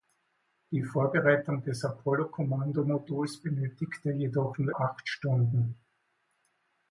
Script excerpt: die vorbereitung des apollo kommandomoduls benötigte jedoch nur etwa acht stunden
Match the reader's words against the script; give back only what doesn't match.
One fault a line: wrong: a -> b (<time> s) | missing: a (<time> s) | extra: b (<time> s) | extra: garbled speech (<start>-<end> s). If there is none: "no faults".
missing: etwa (4.7 s)